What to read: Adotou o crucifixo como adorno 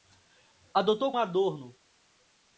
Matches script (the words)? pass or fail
fail